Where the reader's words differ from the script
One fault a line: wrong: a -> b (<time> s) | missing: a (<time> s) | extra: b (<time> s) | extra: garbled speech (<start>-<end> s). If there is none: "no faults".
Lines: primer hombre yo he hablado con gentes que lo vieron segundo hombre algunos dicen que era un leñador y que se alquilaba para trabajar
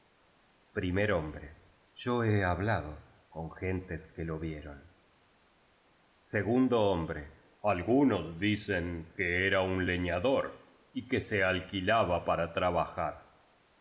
no faults